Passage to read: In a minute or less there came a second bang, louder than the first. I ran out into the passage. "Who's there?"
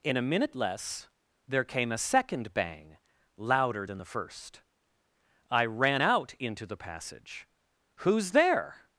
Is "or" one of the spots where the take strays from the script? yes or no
yes